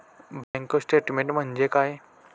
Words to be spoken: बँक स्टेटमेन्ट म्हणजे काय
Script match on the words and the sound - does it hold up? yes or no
no